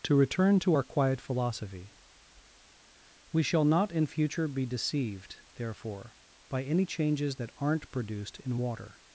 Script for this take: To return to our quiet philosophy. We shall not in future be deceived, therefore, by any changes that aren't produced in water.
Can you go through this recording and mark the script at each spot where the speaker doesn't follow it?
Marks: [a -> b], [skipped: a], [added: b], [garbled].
To return to our quiet philosophy. We shall not in future be deceived, therefore, by any changes that aren't produced in water.